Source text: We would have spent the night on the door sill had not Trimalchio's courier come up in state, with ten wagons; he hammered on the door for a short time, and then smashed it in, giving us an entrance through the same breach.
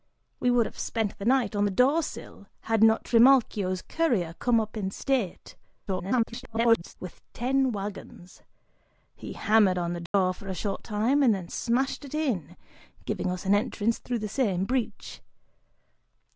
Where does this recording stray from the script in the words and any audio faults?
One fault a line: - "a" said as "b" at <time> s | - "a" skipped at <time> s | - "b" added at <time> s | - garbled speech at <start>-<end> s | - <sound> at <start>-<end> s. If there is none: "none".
- garbled speech at 5.9-6.9 s
- dropout at 10.1-10.1 s